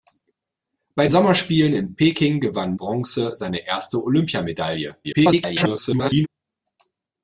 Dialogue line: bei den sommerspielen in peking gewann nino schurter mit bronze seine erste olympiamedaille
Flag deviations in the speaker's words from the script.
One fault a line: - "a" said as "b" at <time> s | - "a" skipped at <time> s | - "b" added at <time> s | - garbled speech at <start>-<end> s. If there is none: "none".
- "den" skipped at 1.1 s
- "nino schurter mit" skipped at 2.8 s
- garbled speech at 5.0-6.3 s